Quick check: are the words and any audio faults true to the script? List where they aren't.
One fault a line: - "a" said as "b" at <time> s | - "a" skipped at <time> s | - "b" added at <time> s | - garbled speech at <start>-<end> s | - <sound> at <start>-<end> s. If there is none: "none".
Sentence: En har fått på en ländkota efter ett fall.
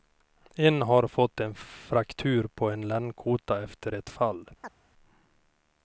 - "en fraktur" added at 1.4 s
- chirp at 4.6-4.8 s